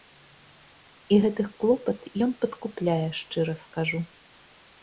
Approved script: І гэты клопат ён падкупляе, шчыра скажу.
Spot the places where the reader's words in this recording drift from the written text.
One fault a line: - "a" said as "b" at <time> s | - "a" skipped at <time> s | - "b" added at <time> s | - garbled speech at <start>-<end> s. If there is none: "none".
none